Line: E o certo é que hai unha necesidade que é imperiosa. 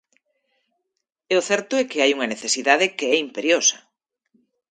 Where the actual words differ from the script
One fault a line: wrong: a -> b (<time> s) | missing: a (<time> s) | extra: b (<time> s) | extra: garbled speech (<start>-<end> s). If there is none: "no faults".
no faults